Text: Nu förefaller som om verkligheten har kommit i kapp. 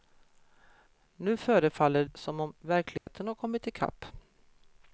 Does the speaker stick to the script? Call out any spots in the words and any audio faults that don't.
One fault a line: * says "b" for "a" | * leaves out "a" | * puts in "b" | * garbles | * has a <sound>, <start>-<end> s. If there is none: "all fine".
* has a dropout, 3.0-3.1 s